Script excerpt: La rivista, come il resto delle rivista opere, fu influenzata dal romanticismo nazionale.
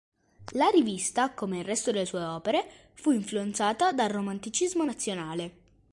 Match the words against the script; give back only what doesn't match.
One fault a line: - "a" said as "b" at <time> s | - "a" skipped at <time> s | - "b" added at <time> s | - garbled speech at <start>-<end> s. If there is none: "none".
- "rivista" said as "sue" at 2.0 s